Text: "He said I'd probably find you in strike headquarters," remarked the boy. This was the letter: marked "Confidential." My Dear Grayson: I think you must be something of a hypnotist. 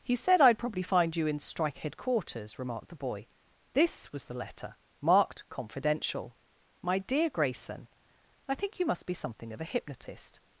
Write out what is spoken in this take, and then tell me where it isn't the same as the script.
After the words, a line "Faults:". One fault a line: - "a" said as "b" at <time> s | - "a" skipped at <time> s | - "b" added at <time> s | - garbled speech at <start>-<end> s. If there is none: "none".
"He said I'd probably find you in strike headquarters," remarked the boy. This was the letter: marked "Confidential." My Dear Grayson: I think you must be something of a hypnotist.
Faults:
none